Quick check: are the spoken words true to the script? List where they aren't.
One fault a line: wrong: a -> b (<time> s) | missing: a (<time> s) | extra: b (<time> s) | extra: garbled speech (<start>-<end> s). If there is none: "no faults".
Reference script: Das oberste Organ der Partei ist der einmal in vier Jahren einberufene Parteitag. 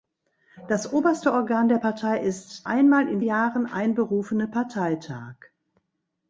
missing: der (2.7 s)
missing: vier (3.2 s)